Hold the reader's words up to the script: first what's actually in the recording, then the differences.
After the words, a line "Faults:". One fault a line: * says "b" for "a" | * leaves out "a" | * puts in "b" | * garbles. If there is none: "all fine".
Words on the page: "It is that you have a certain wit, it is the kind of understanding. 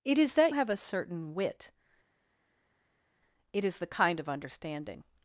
"It is that have a certain wit, it is the kind of understanding.
Faults:
* leaves out "you"